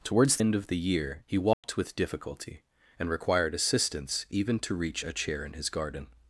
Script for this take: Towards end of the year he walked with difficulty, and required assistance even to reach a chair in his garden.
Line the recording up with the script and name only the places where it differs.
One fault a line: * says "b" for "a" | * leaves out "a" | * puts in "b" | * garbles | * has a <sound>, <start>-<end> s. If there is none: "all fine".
* has a dropout, 1.5-1.6 s